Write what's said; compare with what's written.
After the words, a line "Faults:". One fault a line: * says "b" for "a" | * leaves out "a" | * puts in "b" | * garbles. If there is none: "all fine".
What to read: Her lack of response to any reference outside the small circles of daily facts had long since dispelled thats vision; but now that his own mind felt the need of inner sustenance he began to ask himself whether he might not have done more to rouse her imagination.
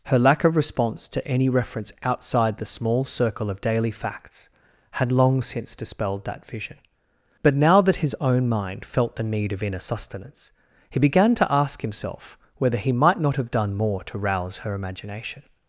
Her lack of response to any reference outside the small circle of daily facts had long since dispelled that vision; but now that his own mind felt the need of inner sustenance he began to ask himself whether he might not have done more to rouse her imagination.
Faults:
* says "circle" for "circles"
* says "that" for "thats"